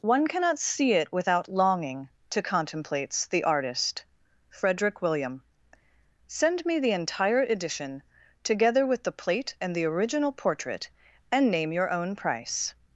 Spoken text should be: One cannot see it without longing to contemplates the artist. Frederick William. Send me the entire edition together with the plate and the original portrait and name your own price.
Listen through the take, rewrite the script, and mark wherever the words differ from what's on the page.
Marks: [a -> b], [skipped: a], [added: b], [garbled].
One cannot see it without longing to contemplates the artist. Frederick William. Send me the entire edition together with the plate and the original portrait and name your own price.